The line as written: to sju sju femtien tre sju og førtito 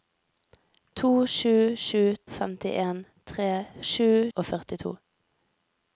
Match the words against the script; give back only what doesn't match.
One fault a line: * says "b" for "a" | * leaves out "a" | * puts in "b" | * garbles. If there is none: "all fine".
all fine